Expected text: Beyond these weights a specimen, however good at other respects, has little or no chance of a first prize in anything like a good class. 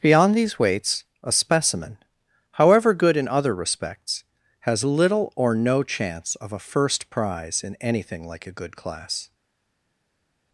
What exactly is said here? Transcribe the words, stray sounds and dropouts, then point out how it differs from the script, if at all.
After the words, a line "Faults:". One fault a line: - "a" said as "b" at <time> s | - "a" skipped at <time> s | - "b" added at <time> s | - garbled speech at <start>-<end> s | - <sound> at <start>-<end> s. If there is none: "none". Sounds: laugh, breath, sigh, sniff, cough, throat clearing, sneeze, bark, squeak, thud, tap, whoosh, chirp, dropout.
Beyond these weights a specimen, however good in other respects, has little or no chance of a first prize in anything like a good class.
Faults:
- "at" said as "in" at 3.1 s